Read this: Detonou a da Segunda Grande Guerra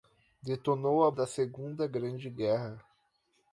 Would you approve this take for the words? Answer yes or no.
yes